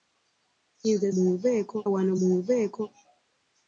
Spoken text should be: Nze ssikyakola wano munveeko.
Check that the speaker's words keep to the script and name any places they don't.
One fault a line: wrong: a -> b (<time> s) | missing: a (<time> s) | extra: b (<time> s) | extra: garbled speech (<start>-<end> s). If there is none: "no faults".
wrong: ssikyakola -> munveeko (1.1 s)